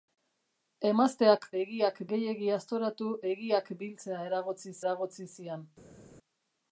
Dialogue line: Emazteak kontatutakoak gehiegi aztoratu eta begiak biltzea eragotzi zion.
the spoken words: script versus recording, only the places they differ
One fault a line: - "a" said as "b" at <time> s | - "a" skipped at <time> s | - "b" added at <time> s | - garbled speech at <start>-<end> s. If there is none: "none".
- "kontatutakoak" said as "begiak" at 1.6 s
- "eta" skipped at 3.1 s
- "eragotzi" added at 4.8 s